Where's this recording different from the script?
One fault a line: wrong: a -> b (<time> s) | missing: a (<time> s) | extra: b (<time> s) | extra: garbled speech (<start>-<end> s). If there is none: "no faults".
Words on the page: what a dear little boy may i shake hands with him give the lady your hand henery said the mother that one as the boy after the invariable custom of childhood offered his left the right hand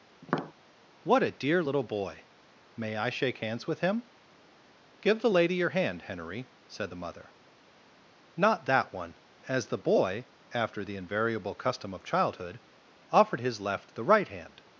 extra: not (8.3 s)